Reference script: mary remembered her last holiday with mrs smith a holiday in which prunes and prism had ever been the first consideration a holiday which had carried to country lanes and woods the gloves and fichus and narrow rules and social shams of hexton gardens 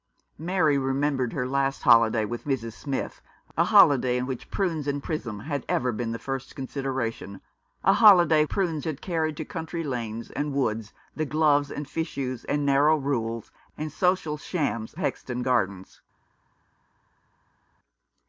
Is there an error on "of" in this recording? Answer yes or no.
yes